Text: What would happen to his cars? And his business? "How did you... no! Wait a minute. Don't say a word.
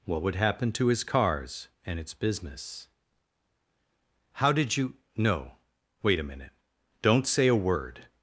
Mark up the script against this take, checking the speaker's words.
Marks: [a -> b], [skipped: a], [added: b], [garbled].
What would happen to his cars? And [his -> its] business? "How did you... no! Wait a minute. Don't say a word.